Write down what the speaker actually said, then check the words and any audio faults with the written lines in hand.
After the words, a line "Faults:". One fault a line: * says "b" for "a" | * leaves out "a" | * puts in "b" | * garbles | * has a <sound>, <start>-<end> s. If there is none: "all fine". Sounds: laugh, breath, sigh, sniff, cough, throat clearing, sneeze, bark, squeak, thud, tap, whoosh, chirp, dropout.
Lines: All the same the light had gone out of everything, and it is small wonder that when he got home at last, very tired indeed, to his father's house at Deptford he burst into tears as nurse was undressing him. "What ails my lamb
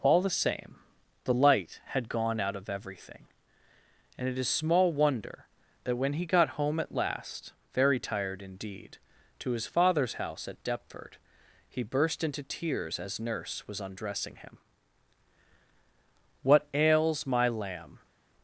All the same the light had gone out of everything, and it is small wonder that when he got home at last, very tired indeed, to his father's house at Deptford he burst into tears as nurse was undressing him. "What ails my lamb
Faults:
all fine